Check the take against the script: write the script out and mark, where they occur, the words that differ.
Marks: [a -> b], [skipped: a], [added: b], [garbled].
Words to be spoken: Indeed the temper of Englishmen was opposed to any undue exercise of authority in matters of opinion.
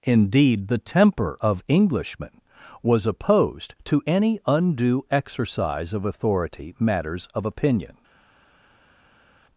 Indeed the temper of Englishmen was opposed to any undue exercise of authority [skipped: in] matters of opinion.